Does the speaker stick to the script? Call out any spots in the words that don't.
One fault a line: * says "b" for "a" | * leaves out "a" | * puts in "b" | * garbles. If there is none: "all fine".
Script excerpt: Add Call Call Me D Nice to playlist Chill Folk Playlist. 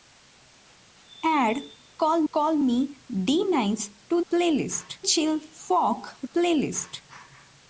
all fine